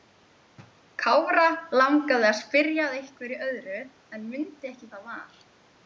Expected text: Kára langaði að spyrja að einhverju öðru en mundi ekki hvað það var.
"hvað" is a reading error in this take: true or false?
true